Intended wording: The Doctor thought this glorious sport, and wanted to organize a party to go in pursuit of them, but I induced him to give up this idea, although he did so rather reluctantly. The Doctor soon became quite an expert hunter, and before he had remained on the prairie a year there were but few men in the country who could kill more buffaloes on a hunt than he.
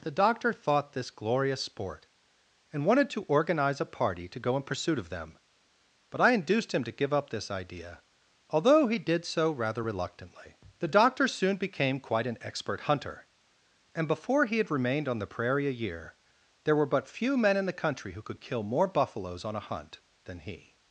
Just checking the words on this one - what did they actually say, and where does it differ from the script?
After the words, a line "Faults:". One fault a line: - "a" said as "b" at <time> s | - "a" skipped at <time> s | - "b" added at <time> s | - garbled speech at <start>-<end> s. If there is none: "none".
The Doctor thought this glorious sport, and wanted to organize a party to go in pursuit of them, but I induced him to give up this idea, although he did so rather reluctantly. The Doctor soon became quite an expert hunter, and before he had remained on the prairie a year there were but few men in the country who could kill more buffaloes on a hunt than he.
Faults:
none